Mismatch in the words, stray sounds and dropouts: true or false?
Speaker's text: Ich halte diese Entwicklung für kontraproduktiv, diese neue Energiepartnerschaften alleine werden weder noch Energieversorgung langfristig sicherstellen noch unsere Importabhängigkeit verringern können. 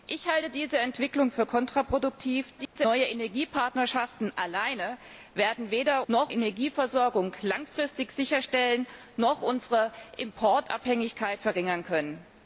true